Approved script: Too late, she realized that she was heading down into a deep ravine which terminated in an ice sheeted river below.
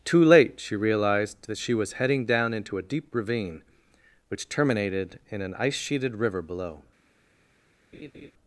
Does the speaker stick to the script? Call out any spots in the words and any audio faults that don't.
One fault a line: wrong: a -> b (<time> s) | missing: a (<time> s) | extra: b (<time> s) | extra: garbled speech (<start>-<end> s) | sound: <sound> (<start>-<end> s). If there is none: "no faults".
sound: laugh (7.9-8.3 s)